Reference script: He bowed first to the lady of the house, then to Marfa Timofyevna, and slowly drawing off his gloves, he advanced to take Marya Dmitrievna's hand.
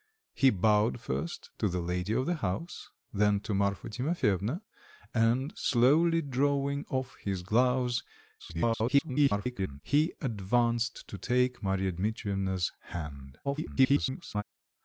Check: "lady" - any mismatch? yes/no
no